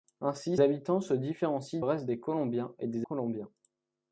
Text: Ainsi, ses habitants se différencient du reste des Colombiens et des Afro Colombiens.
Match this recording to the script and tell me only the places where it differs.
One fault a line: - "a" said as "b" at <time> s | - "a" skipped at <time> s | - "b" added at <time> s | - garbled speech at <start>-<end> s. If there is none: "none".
- "ses" skipped at 0.6 s
- "du" skipped at 1.8 s
- "Afro" skipped at 3.1 s